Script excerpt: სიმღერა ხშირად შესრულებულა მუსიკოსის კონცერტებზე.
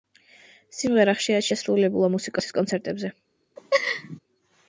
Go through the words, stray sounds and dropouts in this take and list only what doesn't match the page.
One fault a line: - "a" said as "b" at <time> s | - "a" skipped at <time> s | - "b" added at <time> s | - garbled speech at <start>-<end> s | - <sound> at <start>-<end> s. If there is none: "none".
- laugh at 3.6-4.2 s